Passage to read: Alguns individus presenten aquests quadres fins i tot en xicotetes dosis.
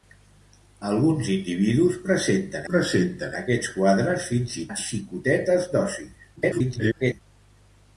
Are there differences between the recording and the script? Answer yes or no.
yes